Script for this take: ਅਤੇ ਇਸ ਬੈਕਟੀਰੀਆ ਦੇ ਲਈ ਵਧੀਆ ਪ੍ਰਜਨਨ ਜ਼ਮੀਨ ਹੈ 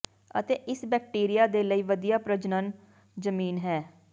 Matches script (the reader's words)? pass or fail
pass